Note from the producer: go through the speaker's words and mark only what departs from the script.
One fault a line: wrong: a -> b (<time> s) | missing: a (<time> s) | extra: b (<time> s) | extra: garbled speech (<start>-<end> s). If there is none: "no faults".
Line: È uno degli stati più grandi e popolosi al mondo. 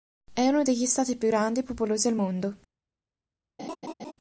no faults